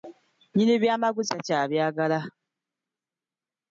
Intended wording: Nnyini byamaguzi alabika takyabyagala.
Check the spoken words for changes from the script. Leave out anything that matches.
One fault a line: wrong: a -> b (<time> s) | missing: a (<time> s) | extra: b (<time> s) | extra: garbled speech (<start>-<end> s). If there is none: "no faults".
missing: alabika (1.3 s)